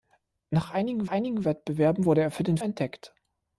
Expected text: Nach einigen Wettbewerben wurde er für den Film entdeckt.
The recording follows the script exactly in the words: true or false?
false